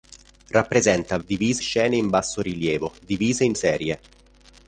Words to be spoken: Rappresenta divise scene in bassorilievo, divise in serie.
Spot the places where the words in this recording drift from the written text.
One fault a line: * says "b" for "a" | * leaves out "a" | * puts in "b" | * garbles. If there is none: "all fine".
all fine